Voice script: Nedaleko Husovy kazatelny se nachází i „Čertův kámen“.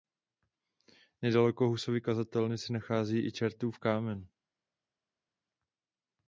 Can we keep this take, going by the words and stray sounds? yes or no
yes